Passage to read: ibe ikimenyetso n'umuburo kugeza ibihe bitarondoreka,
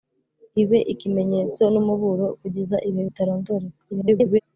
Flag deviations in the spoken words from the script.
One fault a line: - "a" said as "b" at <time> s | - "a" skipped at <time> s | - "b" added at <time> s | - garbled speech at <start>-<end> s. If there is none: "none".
- garbled speech at 3.9-4.4 s